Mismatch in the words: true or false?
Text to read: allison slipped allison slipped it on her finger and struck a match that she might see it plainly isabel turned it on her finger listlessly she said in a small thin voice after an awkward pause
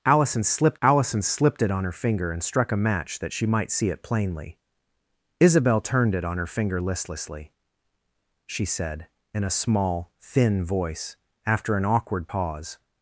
false